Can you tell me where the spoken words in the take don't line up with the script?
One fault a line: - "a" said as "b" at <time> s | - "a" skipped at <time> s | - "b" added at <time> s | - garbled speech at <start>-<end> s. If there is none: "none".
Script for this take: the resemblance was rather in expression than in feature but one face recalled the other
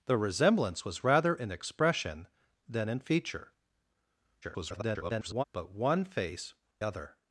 - garbled speech at 4.4-5.4 s
- "recalled the" skipped at 6.5 s